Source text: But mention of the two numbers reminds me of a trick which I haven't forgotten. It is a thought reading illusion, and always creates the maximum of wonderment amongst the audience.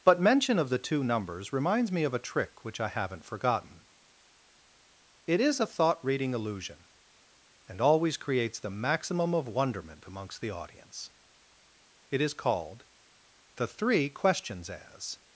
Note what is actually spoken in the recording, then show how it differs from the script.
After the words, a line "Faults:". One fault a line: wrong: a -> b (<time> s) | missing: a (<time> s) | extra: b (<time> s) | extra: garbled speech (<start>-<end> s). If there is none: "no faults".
But mention of the two numbers reminds me of a trick which I haven't forgotten. It is a thought reading illusion, and always creates the maximum of wonderment amongst the audience. It is called THE THREE QUESTIONS As
Faults:
extra: It is called THE THREE QUESTIONS As (12.1 s)